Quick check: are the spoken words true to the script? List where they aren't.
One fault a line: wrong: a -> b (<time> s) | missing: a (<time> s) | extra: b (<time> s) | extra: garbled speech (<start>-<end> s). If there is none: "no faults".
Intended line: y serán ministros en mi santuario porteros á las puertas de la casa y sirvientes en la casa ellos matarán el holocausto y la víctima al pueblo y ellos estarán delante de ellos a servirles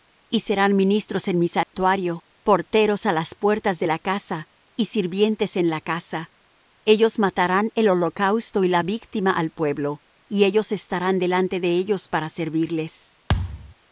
wrong: a -> para (12.1 s)